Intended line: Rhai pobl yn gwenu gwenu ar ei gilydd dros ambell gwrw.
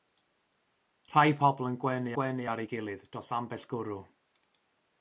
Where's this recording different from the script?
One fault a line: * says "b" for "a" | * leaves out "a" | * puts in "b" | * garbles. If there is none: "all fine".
all fine